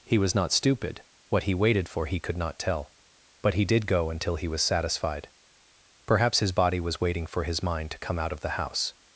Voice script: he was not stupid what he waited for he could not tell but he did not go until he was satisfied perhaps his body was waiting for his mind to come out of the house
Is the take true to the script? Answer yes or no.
no